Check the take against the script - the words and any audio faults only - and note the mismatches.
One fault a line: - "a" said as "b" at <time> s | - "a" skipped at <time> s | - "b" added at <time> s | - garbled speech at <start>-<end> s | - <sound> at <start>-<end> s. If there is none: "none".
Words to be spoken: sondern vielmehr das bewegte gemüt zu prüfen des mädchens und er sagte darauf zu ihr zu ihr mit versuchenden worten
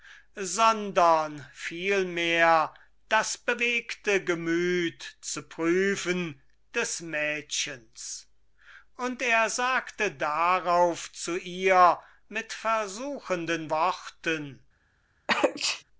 - "zu ihr" skipped at 12.0 s
- sneeze at 15.3-15.8 s